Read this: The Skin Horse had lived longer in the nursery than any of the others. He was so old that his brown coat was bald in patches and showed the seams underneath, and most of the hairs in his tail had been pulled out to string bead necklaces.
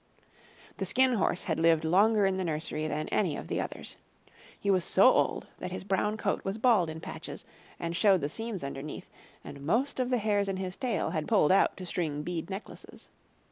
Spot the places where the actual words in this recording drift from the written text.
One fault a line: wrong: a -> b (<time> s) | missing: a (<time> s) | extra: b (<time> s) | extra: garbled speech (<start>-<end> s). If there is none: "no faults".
missing: been (11.3 s)